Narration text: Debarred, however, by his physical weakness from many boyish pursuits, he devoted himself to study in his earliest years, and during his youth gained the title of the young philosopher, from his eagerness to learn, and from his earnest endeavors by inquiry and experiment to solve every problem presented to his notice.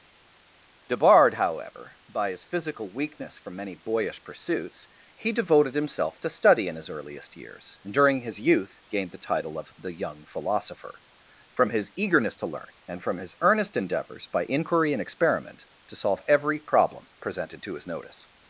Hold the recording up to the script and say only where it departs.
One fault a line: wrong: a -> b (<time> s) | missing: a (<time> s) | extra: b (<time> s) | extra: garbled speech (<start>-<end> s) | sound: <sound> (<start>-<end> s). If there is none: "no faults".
no faults